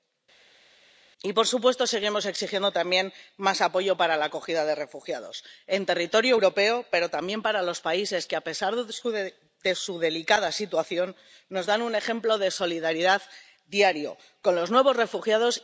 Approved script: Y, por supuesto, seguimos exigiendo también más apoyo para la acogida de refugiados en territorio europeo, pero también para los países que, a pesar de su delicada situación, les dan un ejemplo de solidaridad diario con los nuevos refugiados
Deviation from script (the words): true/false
true